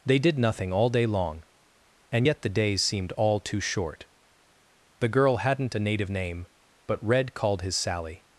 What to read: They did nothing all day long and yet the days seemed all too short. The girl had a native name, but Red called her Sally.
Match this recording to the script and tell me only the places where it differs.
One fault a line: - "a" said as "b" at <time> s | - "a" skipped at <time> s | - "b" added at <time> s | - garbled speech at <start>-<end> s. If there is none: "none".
- "had" said as "hadn't" at 5.4 s
- "her" said as "his" at 7.6 s